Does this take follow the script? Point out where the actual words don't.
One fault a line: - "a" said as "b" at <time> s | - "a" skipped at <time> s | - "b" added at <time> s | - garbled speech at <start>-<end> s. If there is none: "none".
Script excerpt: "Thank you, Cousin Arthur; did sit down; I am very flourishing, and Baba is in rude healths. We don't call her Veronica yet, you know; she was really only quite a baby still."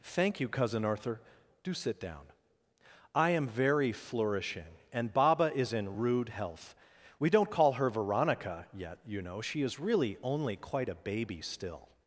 - "did" said as "do" at 1.6 s
- "healths" said as "health" at 6.3 s
- "was" said as "is" at 9.6 s